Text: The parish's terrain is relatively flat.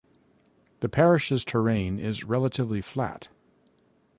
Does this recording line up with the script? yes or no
yes